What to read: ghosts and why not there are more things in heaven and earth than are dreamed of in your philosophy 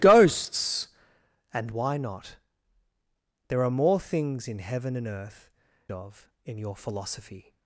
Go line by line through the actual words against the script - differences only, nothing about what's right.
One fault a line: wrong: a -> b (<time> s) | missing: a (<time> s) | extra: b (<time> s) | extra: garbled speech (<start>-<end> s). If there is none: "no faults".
missing: than are dreamed (5.5 s)